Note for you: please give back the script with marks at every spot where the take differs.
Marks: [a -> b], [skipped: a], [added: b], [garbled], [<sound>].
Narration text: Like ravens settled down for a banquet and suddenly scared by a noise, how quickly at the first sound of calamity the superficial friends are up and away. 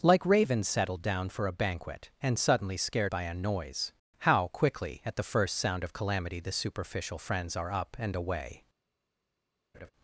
Like ravens settled down for a banquet and suddenly scared by a noise, how quickly at the first sound of calamity the superficial friends are up and away. [laugh]